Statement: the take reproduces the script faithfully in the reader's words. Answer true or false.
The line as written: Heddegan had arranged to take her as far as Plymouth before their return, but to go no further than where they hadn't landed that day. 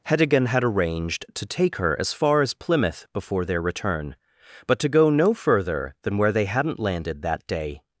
true